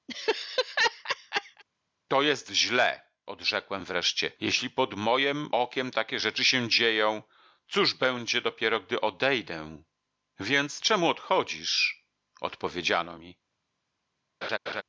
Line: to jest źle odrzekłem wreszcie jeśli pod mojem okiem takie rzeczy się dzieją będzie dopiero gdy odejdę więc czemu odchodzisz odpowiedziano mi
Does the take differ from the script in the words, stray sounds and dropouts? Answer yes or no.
yes